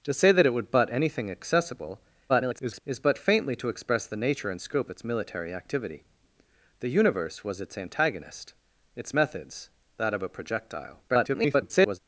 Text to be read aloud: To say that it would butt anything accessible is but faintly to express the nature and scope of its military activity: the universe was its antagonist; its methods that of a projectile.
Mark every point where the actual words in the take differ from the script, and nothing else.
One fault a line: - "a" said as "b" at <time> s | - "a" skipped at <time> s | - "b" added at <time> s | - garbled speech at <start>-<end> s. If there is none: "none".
- garbled speech at 2.3-2.8 s
- "of" skipped at 4.9 s
- garbled speech at 11.1-12.0 s